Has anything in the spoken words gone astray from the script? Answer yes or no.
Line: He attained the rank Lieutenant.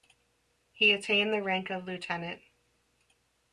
yes